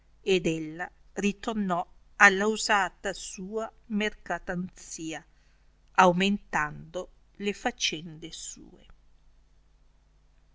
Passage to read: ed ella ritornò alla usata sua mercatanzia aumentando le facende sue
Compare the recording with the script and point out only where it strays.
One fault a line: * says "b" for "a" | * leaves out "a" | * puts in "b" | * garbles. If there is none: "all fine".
all fine